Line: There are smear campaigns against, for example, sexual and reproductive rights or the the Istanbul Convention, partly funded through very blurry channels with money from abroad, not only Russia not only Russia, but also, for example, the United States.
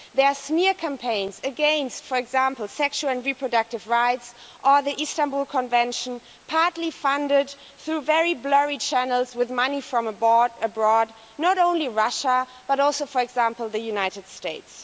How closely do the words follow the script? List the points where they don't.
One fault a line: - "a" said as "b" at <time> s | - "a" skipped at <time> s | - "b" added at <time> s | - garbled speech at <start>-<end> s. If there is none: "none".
- "the" skipped at 5.0 s
- "not only Russia" skipped at 12.5 s